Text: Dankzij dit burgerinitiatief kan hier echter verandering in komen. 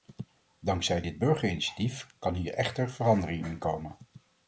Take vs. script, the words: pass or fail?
pass